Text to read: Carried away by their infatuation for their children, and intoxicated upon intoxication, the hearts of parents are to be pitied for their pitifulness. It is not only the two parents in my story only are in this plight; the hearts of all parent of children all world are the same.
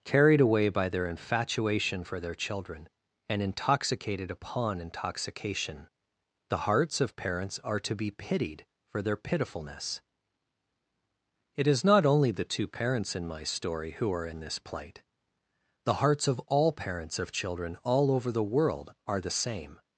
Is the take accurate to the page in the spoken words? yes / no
no